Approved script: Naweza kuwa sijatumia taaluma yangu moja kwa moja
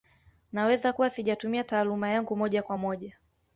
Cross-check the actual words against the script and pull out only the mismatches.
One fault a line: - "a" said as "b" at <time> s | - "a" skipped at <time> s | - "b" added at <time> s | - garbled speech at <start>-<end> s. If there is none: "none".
none